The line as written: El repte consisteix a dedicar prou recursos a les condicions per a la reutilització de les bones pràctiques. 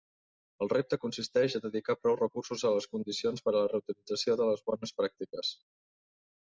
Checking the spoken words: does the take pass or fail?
pass